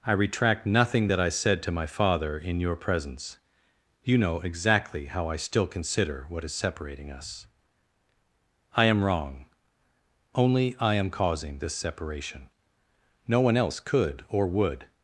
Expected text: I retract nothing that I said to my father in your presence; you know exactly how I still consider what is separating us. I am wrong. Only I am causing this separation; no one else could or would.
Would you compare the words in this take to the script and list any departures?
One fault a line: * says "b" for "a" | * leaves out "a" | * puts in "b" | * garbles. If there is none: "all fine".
all fine